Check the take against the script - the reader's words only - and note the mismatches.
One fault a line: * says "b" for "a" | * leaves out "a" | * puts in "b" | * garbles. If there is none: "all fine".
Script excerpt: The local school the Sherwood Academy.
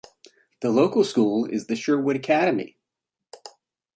* puts in "is"